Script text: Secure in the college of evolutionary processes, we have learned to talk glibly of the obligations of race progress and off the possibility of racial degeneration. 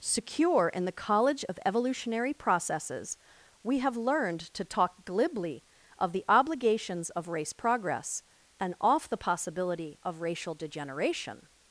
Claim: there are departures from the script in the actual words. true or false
false